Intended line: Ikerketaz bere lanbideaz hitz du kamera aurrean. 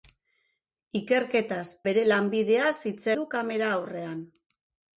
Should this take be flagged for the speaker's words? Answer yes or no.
no